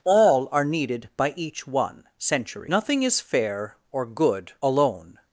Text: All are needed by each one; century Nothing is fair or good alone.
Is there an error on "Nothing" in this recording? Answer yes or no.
no